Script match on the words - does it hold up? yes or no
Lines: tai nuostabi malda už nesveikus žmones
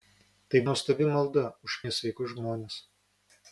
yes